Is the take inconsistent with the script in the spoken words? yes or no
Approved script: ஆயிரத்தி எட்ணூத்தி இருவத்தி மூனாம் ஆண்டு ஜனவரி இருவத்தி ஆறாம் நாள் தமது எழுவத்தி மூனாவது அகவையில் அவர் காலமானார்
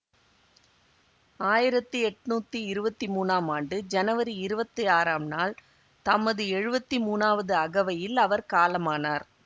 no